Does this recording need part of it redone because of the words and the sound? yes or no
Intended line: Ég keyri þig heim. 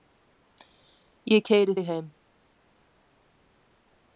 no